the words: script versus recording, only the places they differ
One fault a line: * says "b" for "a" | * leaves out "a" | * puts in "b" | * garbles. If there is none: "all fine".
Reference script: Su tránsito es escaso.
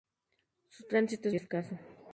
all fine